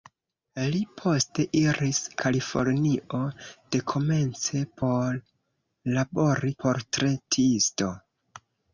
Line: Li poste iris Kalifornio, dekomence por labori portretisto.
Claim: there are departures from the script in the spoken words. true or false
false